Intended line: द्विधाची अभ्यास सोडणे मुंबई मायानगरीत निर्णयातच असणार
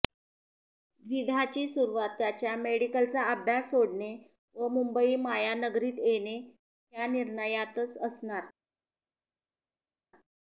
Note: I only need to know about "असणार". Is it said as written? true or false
true